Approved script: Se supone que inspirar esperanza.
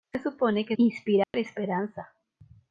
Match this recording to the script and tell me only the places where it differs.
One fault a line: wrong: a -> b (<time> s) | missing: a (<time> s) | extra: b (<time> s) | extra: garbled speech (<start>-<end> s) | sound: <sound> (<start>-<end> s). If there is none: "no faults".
sound: dropout (1.2-1.3 s)